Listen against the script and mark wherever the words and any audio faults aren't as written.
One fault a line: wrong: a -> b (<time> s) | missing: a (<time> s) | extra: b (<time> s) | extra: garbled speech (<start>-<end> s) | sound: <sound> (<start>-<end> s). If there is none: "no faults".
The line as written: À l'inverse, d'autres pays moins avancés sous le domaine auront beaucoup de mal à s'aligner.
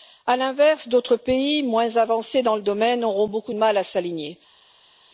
wrong: sous -> dans (2.4 s)